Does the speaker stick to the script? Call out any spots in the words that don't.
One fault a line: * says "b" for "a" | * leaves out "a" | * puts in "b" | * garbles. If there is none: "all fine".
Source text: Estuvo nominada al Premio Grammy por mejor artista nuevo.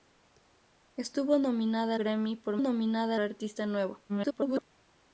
* leaves out "al Premio"
* says "nominada" for "mejor"
* garbles